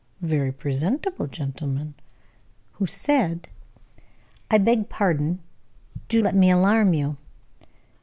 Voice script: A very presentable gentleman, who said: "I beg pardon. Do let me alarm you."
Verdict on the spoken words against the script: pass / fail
pass